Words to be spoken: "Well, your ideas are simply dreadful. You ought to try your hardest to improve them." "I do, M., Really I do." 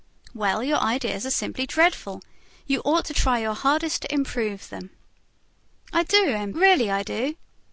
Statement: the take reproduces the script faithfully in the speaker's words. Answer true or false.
true